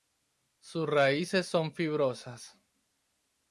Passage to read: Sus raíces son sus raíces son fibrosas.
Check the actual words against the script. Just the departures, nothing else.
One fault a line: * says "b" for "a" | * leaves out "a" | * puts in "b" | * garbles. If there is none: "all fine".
* leaves out "sus raíces son"